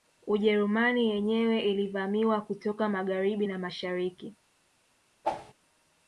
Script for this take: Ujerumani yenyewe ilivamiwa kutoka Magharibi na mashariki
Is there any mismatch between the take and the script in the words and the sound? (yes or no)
yes